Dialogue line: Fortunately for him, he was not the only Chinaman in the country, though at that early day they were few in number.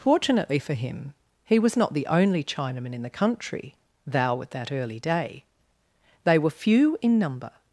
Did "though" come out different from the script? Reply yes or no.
yes